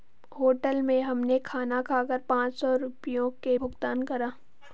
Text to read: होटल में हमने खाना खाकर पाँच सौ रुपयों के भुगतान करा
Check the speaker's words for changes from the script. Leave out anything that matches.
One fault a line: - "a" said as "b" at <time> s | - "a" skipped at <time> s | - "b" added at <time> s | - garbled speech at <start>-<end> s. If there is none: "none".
none